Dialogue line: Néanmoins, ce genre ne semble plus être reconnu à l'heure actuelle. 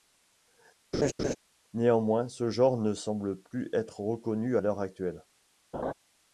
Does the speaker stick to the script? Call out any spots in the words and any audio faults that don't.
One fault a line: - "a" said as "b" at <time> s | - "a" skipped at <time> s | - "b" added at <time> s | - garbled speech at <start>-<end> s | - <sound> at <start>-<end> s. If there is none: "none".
- laugh at 0.9-1.4 s
- laugh at 5.7-5.9 s